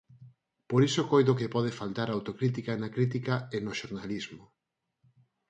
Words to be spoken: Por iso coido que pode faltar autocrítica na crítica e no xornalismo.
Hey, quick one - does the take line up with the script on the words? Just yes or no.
yes